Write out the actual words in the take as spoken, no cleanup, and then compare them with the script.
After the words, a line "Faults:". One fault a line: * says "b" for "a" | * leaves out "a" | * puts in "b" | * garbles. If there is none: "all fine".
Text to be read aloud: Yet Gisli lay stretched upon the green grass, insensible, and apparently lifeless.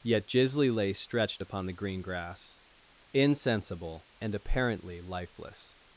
Yet Gisli lay stretched upon the green grass, insensible, and apparently lifeless.
Faults:
all fine